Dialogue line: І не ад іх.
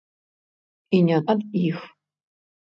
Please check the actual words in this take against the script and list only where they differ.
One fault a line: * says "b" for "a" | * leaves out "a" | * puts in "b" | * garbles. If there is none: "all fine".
all fine